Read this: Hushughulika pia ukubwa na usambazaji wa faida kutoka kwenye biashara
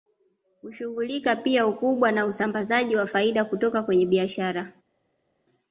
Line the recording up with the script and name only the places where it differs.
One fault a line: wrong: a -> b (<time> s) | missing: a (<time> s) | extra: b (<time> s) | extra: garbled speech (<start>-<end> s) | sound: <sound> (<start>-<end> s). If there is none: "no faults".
no faults